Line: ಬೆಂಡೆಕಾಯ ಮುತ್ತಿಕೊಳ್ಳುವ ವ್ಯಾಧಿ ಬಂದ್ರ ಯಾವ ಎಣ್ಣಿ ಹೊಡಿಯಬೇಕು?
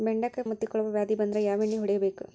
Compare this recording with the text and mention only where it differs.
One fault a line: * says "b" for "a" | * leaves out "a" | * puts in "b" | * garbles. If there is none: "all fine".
all fine